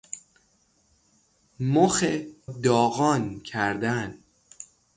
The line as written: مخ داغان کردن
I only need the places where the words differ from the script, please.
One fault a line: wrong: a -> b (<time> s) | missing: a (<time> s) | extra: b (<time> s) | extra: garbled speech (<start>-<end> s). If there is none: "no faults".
no faults